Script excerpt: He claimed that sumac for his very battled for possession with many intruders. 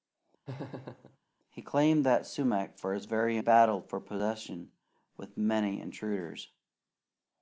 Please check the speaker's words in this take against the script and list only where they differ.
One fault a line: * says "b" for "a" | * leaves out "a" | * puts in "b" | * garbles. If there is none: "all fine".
all fine